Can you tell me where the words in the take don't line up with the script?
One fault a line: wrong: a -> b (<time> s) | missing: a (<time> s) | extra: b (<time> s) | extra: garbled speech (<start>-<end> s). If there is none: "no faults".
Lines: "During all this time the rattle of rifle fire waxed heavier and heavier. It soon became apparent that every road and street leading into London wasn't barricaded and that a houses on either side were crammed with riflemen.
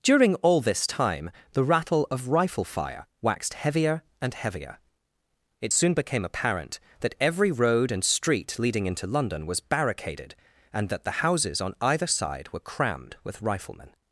wrong: wasn't -> was (9.4 s)
wrong: a -> the (11.0 s)